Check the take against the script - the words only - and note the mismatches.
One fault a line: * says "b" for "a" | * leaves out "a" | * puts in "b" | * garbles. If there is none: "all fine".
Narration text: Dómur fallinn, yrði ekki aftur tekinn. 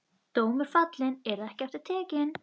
all fine